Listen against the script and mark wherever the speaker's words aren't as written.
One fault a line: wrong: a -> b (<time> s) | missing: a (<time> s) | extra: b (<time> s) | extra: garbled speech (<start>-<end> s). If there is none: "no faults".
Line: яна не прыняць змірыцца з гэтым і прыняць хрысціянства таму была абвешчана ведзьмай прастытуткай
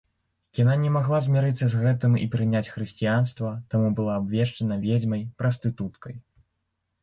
wrong: прыняць -> магла (0.9 s)